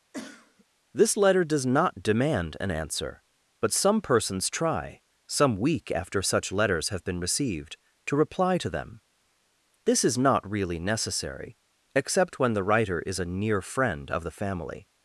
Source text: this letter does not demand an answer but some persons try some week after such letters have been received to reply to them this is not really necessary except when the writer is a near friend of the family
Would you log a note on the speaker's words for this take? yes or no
no